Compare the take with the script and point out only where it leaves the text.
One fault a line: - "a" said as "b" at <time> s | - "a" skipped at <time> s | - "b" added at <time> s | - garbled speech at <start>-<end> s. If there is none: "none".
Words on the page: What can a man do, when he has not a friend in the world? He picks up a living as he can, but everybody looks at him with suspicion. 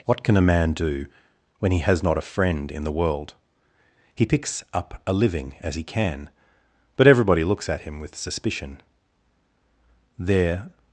- "There" added at 10.2 s